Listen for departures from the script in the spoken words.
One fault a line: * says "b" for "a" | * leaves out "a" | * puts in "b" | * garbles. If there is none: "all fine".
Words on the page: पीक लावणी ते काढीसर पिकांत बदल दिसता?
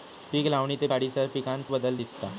all fine